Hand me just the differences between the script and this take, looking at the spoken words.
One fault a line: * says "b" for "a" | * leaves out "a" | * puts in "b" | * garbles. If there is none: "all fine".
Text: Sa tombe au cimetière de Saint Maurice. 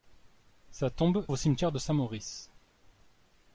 all fine